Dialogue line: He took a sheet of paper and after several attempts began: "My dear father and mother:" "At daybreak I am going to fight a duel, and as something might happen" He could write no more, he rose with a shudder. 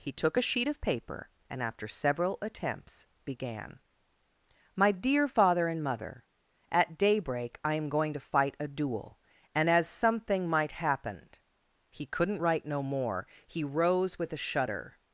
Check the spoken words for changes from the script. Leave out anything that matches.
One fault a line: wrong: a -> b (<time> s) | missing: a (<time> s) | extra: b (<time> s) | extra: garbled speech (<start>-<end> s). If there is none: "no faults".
wrong: could -> couldn't (12.1 s)